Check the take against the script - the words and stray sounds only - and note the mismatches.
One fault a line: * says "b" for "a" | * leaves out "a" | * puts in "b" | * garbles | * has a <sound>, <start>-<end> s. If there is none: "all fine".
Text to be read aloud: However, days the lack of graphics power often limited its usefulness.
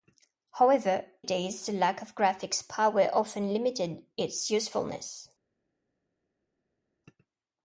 all fine